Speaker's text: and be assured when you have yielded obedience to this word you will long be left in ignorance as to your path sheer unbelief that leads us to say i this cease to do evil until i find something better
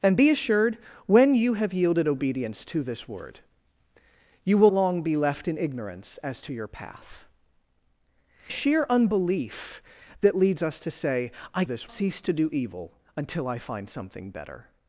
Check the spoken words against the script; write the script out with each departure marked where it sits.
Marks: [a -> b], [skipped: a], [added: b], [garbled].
and be assured when you have yielded obedience to this word you will long be left in ignorance as to your path sheer unbelief that leads us to say i this cease to do evil until i find something better